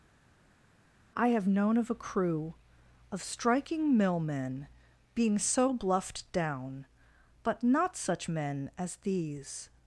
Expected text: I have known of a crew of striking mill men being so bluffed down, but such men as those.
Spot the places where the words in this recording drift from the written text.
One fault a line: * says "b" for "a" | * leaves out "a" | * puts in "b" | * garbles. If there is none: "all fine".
* puts in "not"
* says "these" for "those"